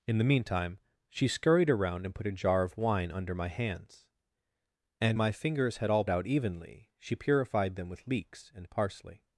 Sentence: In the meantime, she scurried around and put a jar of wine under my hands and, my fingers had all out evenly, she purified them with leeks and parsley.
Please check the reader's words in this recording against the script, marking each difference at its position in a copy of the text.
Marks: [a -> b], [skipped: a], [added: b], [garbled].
In the meantime, she scurried around and put a jar of wine under my hands and, my fingers had all out evenly, she purified them with leeks and parsley.